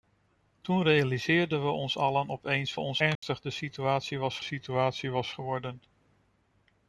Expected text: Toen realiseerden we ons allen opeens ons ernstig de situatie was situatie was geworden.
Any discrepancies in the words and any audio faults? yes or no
yes